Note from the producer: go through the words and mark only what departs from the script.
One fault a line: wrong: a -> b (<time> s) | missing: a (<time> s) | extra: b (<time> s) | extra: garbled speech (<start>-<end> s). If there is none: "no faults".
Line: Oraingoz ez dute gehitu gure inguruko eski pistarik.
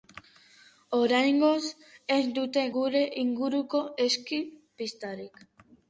missing: gehitu (2.6 s)